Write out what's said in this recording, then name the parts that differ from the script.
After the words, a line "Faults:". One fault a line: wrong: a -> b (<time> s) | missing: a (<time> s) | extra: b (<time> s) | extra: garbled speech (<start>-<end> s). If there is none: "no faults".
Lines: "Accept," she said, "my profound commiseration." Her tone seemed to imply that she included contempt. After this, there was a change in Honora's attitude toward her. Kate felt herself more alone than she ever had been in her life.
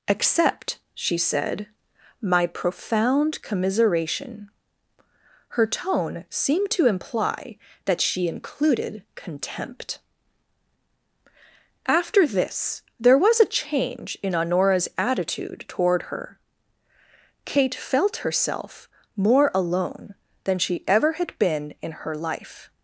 "Accept," she said, "my profound commiseration." Her tone seemed to imply that she included contempt. After this, there was a change in Honora's attitude toward her. Kate felt herself more alone than she ever had been in her life.
Faults:
no faults